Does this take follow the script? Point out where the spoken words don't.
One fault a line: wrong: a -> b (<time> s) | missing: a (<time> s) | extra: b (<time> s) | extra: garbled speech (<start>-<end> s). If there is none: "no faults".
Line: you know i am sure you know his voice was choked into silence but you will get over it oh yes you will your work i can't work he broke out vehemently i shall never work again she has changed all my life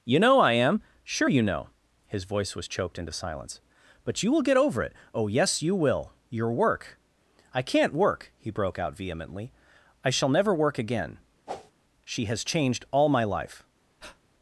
no faults